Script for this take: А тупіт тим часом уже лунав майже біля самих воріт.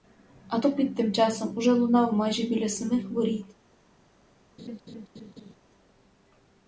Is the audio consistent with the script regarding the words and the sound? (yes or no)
no